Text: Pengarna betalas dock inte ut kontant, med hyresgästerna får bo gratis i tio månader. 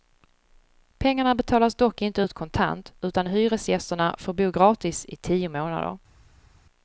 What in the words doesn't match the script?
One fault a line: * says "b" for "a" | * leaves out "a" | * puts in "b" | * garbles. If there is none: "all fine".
* says "utan" for "med"